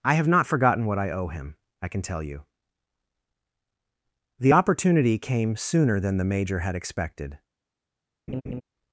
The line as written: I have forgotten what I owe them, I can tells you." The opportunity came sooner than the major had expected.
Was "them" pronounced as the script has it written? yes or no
no